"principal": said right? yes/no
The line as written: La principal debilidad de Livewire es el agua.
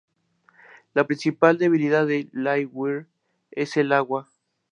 yes